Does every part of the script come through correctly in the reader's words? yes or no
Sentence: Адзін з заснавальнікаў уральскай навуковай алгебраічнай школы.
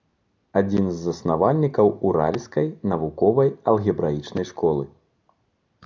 yes